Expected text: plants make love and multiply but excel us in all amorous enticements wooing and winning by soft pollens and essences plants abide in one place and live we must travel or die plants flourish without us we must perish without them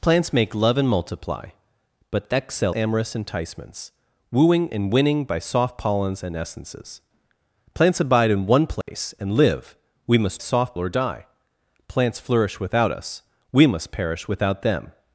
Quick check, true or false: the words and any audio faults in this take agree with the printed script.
false